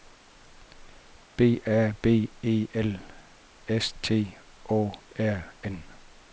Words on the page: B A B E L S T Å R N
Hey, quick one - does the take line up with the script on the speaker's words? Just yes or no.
yes